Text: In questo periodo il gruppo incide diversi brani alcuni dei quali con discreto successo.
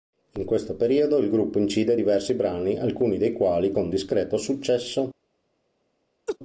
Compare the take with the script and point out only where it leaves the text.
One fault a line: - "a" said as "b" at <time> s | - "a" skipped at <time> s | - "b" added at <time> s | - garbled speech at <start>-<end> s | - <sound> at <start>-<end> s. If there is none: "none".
- laugh at 6.3-6.4 s